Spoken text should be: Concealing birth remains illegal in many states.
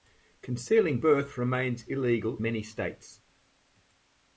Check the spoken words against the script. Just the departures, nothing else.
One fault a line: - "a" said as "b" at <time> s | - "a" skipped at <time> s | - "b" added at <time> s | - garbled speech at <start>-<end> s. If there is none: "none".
- "in" skipped at 2.4 s